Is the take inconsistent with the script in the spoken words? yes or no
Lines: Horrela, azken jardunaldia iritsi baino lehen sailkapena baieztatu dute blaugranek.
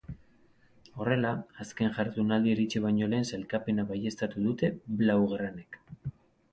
no